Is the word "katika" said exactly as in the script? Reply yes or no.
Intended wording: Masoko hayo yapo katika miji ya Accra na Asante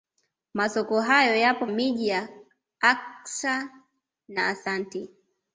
no